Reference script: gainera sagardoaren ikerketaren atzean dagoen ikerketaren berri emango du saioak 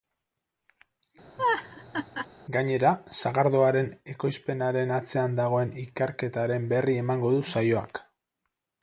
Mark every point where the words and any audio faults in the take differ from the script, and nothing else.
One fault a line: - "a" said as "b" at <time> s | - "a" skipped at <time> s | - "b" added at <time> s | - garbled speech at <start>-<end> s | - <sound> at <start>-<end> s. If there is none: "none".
- laugh at 1.4-2.3 s
- "ikerketaren" said as "ekoizpenaren" at 4.1 s